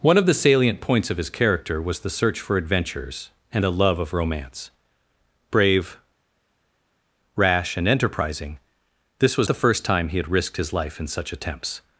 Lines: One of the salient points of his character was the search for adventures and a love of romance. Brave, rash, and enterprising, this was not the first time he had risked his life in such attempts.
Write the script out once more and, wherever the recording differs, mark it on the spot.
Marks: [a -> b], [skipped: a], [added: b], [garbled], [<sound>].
One of the salient points of his character was the search for adventures and a love of romance. Brave, rash, and enterprising, this was [skipped: not] the first time he had risked his life in such attempts.